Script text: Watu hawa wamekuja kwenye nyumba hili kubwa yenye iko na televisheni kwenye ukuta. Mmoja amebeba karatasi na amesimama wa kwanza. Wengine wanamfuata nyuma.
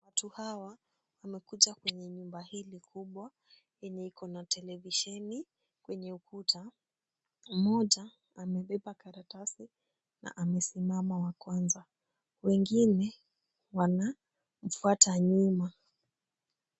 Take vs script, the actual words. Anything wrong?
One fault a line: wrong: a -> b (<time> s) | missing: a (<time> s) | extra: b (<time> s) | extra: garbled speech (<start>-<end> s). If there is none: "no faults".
no faults